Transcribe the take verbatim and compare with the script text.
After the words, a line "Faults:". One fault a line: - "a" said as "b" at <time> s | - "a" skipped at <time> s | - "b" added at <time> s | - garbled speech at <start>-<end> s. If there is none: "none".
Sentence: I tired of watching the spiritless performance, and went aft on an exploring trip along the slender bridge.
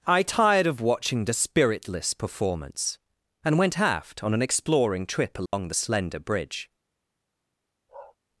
I tired of watching the spiritless performance, and went aft on an exploring trip along the slender bridge.
Faults:
none